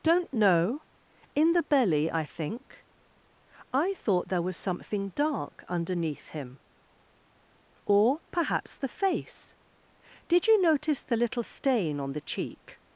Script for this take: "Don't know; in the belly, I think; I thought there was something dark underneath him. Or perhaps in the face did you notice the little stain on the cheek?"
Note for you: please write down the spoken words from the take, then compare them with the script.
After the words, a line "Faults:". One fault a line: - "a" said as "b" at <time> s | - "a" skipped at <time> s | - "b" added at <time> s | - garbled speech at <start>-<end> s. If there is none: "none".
"Don't know; in the belly, I think; I thought there was something dark underneath him. Or perhaps the face did you notice the little stain on the cheek?"
Faults:
- "in" skipped at 8.8 s